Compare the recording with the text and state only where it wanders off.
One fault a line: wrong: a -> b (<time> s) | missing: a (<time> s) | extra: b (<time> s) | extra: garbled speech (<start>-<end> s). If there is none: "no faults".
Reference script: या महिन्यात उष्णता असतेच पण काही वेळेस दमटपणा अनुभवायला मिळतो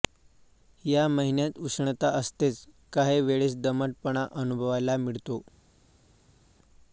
missing: पण (2.6 s)